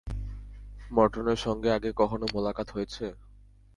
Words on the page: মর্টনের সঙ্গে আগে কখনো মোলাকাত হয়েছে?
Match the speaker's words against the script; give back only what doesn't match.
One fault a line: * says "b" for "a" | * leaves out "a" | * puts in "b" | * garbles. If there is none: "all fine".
all fine